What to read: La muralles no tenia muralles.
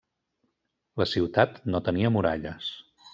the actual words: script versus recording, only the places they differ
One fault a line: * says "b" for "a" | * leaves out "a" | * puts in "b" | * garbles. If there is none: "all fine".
* says "ciutat" for "muralles"